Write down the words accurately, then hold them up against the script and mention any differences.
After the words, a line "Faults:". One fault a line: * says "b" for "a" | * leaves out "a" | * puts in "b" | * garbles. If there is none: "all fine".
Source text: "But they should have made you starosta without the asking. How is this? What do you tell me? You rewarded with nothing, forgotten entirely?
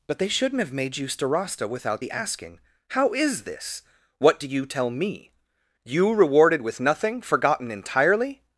"But they shouldn't have made you starosta without the asking. How is this? What do you tell me? You rewarded with nothing, forgotten entirely?
Faults:
* says "shouldn't" for "should"